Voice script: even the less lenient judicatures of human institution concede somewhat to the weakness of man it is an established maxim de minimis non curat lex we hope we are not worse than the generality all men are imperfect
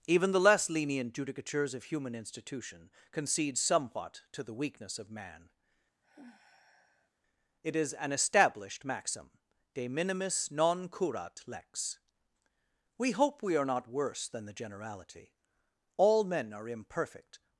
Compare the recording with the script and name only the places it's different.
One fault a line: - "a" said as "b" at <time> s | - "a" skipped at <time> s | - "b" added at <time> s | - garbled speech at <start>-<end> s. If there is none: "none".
none